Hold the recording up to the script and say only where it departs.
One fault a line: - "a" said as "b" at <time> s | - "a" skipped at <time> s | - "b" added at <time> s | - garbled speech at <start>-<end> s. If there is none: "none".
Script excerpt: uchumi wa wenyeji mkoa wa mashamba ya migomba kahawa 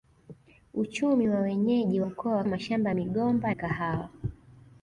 none